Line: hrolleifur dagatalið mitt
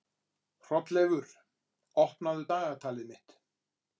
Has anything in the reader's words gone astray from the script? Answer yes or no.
yes